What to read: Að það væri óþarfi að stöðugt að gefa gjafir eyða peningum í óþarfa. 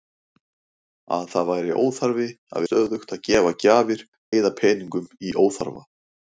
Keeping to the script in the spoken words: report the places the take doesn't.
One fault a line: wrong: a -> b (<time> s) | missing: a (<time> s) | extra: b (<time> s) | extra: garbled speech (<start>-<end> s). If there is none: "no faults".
no faults